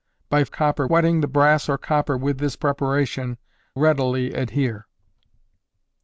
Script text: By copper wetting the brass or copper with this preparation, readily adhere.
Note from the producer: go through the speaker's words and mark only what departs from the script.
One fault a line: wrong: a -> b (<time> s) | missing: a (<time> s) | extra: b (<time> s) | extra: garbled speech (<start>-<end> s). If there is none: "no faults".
no faults